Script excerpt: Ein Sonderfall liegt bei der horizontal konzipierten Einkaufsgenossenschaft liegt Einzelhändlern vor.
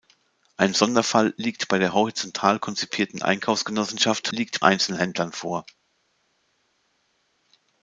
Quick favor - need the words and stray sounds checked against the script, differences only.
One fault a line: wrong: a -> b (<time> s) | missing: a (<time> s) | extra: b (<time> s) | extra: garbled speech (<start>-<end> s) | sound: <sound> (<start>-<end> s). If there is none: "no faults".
no faults